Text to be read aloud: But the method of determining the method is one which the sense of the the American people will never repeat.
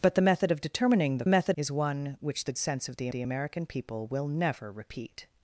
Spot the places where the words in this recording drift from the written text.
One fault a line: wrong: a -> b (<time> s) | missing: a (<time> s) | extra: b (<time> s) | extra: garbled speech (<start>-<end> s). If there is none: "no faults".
no faults